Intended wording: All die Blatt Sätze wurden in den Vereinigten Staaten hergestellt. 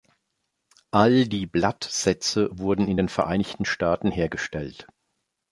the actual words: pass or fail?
pass